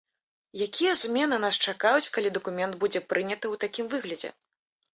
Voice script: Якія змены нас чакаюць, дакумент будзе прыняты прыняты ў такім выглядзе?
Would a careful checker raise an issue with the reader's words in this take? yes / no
yes